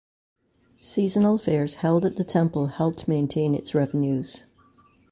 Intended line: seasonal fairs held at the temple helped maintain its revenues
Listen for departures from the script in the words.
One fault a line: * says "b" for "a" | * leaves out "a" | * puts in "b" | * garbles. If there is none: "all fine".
all fine